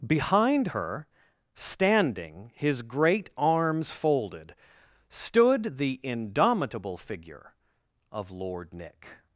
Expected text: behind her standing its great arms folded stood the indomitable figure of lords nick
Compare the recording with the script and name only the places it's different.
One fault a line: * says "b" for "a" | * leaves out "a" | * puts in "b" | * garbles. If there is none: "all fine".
* says "his" for "its"
* says "lord" for "lords"